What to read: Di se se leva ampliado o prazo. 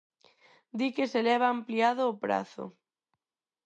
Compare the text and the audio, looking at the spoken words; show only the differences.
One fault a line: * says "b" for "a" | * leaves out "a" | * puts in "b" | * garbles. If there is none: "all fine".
* says "que" for "se"